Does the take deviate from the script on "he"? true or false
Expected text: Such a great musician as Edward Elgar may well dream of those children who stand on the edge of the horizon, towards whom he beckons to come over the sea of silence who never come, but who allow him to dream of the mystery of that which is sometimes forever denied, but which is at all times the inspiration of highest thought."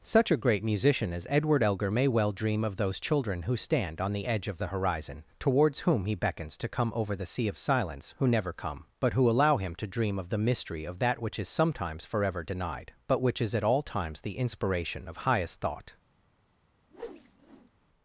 false